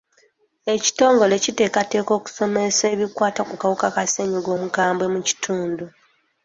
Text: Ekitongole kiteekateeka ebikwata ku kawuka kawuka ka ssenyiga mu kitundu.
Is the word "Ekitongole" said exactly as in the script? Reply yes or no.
yes